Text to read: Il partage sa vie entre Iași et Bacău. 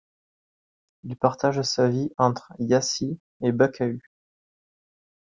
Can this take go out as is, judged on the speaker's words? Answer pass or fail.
pass